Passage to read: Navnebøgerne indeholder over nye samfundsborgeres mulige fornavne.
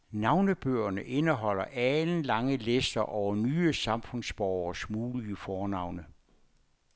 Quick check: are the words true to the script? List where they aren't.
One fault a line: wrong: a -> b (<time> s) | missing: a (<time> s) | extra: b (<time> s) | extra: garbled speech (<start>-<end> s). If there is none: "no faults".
extra: alenlange lister (1.6 s)